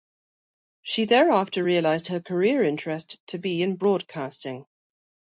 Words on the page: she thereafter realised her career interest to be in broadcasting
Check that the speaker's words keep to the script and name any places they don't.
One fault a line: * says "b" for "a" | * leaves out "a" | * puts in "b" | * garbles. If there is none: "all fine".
all fine